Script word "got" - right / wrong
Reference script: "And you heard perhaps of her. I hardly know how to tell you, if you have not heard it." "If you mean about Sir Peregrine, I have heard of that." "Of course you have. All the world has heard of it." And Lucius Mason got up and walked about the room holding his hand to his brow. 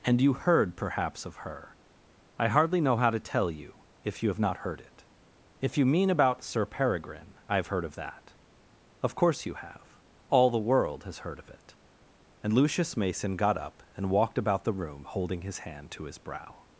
right